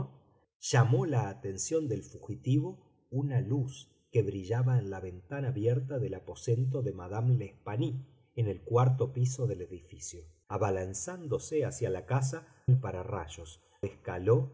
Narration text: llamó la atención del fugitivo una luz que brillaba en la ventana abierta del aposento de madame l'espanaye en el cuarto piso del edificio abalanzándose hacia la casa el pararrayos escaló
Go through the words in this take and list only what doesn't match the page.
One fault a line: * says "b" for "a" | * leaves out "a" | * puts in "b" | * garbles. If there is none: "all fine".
all fine